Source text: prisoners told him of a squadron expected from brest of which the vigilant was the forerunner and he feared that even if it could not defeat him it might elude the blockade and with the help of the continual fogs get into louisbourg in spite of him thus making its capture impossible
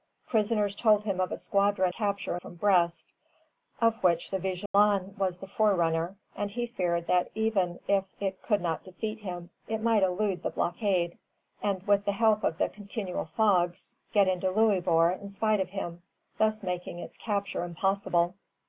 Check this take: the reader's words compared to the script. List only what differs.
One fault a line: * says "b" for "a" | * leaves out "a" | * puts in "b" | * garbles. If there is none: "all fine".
* says "capture" for "expected"